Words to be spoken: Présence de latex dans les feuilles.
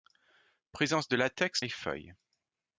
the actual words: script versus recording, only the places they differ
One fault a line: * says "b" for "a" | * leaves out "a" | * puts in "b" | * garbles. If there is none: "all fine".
* leaves out "dans"